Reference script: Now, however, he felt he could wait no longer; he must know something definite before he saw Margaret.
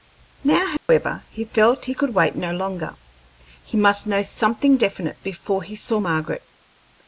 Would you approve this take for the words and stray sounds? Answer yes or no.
no